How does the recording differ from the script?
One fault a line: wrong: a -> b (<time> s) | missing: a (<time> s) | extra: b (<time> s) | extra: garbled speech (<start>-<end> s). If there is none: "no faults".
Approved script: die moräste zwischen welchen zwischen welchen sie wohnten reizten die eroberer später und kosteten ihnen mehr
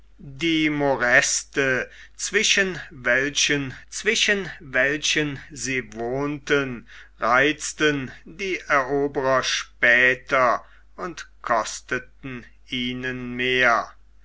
no faults